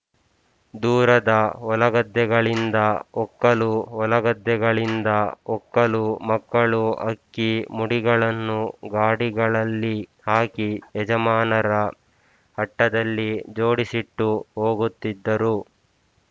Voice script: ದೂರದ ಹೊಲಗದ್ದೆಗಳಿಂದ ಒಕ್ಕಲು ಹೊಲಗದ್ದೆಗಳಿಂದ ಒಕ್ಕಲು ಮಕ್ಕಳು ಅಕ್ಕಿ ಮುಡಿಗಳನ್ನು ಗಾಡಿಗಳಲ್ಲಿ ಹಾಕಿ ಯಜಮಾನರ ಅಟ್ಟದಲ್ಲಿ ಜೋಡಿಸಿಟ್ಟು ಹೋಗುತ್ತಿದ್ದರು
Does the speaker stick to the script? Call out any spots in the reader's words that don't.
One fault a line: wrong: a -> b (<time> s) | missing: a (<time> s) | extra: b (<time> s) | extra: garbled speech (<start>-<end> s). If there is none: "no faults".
no faults